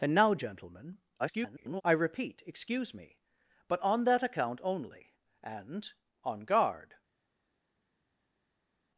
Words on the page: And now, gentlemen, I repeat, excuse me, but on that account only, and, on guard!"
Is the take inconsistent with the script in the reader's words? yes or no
yes